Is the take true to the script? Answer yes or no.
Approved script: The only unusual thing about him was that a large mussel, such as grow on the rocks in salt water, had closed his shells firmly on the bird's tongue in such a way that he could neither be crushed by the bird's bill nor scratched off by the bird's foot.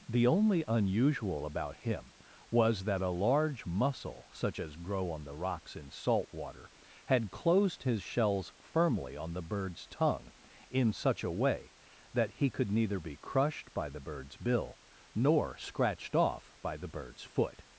no